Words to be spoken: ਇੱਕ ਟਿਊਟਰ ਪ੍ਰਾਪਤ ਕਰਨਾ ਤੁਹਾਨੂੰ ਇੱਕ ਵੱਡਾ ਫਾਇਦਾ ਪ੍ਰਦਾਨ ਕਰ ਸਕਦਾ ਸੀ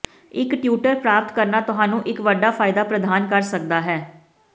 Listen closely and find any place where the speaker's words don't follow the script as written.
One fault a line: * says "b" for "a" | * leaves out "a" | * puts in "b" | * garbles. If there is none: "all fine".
* says "ਹੈ" for "ਸੀ"